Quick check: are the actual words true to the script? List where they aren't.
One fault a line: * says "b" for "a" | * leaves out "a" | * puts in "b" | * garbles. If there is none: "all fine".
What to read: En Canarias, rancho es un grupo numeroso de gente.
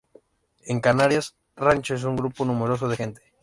all fine